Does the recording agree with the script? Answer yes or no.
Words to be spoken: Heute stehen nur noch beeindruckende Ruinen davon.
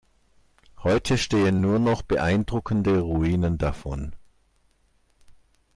yes